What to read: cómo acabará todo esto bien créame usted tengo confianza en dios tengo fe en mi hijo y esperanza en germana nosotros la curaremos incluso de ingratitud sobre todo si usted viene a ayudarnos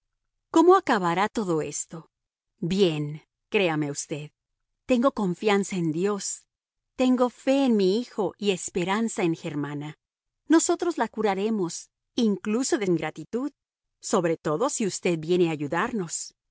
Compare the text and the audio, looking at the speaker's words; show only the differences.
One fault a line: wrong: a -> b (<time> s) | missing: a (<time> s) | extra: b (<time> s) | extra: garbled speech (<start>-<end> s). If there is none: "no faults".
no faults